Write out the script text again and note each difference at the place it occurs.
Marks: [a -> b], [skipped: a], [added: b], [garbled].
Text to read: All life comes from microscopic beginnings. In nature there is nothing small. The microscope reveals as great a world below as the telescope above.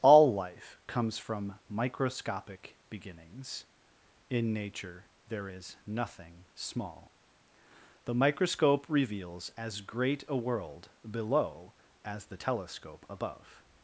All life comes from microscopic beginnings. In nature there is nothing small. The microscope reveals as great a world below as the telescope above.